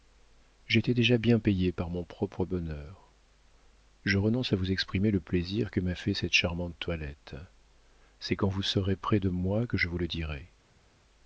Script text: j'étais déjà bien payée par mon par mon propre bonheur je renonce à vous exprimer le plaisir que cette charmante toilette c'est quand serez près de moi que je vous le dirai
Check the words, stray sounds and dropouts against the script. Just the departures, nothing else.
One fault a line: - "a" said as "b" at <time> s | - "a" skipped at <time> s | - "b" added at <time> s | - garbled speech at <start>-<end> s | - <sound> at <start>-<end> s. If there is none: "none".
- "par mon" skipped at 2.0 s
- "m'a fait" added at 5.8 s
- "vous" added at 8.5 s